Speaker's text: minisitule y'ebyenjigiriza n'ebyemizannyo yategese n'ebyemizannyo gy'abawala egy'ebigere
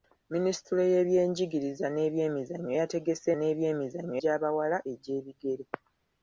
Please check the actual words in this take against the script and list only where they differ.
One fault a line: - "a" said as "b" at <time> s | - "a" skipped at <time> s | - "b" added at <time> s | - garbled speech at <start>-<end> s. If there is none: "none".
none